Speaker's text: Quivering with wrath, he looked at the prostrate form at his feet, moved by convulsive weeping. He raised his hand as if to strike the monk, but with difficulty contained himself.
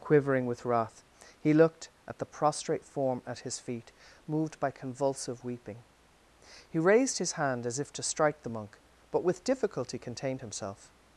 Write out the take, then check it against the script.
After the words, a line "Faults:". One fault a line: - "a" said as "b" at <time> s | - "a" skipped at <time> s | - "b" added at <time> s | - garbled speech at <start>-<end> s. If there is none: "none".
Quivering with wrath, he looked at the prostrate form at his feet, moved by convulsive weeping. He raised his hand as if to strike the monk, but with difficulty contained himself.
Faults:
none